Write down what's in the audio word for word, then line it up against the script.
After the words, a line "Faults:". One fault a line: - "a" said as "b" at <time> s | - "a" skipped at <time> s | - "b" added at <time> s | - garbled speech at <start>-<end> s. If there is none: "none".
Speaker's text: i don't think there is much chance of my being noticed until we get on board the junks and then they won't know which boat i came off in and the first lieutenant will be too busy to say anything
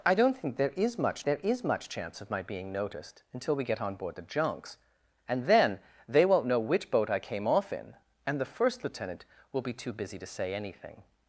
i don't think there is much there is much chance of my being noticed until we get on board the junks and then they won't know which boat i came off in and the first lieutenant will be too busy to say anything
Faults:
- "there is much" added at 1.2 s